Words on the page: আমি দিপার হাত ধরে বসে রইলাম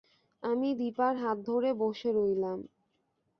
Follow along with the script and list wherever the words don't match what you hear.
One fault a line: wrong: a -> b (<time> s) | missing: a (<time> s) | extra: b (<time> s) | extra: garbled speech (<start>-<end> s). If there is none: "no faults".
no faults